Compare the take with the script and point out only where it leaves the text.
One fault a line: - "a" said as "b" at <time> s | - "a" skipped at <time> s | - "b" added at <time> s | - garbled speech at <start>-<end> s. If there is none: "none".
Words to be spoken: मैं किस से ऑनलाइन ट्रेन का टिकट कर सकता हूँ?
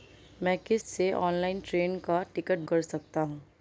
none